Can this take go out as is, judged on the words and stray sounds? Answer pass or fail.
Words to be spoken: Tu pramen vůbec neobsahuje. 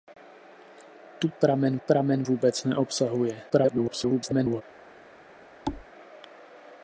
fail